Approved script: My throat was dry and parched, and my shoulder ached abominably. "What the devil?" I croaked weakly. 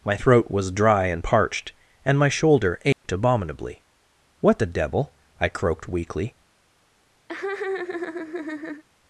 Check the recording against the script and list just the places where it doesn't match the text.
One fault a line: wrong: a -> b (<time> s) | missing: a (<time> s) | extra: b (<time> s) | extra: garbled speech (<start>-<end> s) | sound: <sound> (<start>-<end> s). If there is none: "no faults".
sound: dropout (2.9-3.0 s)
sound: laugh (7.3-8.8 s)